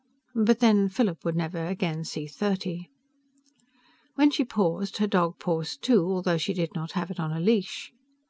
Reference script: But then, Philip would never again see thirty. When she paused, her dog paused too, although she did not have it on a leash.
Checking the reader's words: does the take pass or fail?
pass